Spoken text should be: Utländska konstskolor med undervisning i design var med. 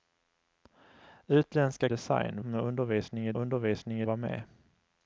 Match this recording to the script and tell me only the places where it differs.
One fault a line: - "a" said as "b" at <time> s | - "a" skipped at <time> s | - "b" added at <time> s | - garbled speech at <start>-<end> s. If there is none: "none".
- "konstskolor" said as "design" at 1.9 s
- "design" said as "undervisning" at 3.3 s